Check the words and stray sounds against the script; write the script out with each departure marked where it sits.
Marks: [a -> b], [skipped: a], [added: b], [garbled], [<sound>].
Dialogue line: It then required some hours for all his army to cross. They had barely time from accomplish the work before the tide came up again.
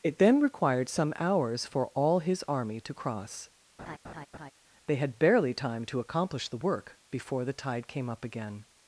It then required some hours for all his army to cross. [laugh] They had barely time [from -> to] accomplish the work before the tide came up again.